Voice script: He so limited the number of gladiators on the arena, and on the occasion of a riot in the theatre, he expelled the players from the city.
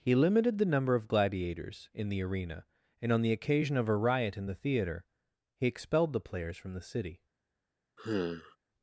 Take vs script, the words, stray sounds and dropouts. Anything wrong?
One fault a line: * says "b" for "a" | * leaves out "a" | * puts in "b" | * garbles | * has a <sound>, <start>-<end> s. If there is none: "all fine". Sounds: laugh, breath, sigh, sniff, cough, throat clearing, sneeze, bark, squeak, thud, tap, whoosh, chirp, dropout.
* leaves out "so"
* says "in" for "on"
* has a sigh, 8.0-8.6 s